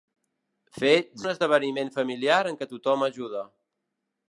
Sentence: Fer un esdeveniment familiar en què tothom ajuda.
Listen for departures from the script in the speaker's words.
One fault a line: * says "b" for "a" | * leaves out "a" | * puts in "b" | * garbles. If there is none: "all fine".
all fine